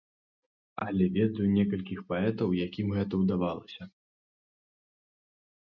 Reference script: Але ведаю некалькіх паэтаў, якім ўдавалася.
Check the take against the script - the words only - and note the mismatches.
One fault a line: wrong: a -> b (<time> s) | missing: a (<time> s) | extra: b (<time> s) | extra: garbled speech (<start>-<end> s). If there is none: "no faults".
extra: гэта (3.0 s)